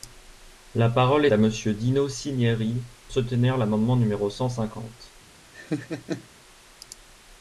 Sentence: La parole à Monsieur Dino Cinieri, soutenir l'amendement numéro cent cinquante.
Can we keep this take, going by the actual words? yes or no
yes